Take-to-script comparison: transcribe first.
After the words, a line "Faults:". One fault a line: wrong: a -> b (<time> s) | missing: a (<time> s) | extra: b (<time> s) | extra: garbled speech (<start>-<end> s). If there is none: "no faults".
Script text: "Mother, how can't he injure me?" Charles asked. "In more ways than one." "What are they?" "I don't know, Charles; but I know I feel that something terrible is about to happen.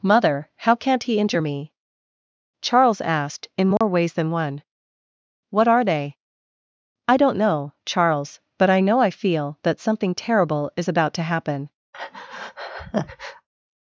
"Mother, how can't he injure me?" Charles asked. "In more ways than one." "What are they?" "I don't know, Charles; but I know I feel that something terrible is about to happen.
Faults:
no faults